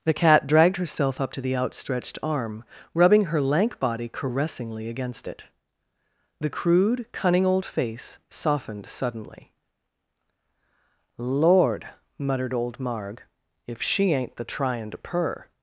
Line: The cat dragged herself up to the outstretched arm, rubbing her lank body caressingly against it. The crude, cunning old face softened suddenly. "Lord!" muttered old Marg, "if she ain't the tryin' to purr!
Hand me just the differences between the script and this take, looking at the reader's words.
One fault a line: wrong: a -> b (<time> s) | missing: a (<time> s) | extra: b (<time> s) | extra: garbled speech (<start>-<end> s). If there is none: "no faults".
no faults